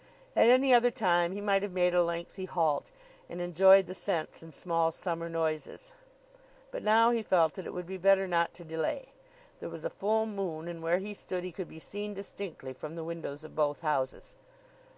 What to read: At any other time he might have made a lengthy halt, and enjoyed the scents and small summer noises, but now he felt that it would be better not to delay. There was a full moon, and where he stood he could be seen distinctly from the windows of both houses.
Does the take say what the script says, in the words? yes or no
yes